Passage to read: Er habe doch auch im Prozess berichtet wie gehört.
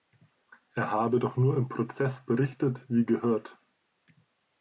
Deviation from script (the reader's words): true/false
true